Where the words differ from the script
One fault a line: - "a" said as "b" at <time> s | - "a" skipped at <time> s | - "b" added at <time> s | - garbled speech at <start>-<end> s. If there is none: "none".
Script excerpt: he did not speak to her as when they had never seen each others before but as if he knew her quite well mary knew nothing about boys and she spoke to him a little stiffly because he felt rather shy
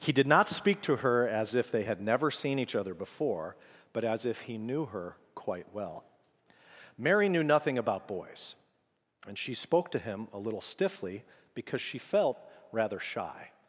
- "when" said as "if" at 1.5 s
- "others" said as "other" at 2.7 s
- "he" said as "she" at 11.8 s